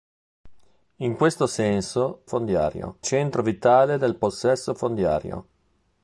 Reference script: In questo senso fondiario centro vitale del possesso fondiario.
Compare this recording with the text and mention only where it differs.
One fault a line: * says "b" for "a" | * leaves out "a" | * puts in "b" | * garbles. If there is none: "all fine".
all fine